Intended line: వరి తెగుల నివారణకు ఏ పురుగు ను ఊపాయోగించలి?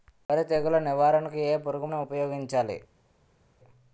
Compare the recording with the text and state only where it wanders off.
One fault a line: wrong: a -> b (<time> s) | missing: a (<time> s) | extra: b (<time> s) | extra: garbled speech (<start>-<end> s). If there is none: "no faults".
no faults